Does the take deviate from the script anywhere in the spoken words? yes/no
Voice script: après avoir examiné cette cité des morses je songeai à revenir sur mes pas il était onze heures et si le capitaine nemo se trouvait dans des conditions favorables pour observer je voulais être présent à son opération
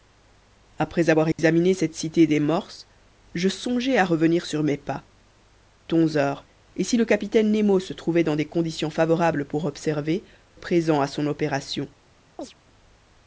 yes